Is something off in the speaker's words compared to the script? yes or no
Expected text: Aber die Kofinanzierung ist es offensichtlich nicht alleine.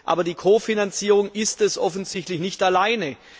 no